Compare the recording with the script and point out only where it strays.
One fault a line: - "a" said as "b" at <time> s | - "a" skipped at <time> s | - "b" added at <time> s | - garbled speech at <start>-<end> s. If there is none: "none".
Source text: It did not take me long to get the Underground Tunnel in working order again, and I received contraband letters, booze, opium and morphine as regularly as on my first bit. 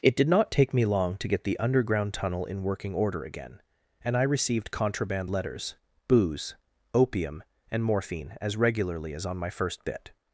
none